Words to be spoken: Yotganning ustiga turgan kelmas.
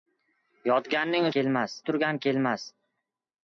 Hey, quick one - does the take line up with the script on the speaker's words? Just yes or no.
no